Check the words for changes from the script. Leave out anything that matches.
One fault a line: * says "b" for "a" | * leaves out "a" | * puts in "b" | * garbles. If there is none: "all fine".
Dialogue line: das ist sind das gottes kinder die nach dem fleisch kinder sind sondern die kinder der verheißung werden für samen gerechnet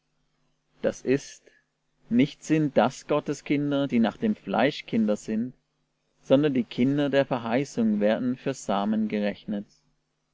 * puts in "nicht"